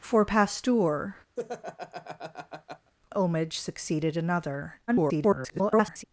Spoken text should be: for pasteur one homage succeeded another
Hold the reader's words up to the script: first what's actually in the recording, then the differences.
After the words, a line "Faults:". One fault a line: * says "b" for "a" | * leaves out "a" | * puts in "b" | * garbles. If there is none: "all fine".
for pasteur homage succeeded another [garbled]
Faults:
* leaves out "one"
* garbles